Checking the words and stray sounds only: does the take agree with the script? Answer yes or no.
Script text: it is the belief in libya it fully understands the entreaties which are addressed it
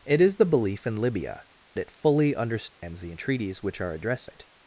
no